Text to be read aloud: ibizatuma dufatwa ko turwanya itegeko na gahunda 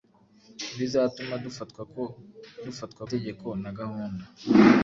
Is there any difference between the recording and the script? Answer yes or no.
yes